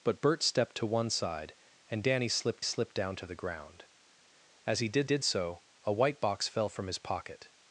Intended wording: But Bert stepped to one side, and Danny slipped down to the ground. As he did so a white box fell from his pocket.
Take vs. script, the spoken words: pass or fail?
fail